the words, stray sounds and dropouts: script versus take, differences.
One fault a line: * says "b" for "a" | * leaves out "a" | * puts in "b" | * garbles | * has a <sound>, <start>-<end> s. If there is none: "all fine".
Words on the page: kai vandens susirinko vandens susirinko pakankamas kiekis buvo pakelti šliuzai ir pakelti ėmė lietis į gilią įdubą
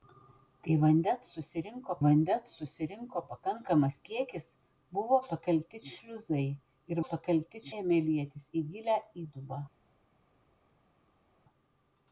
all fine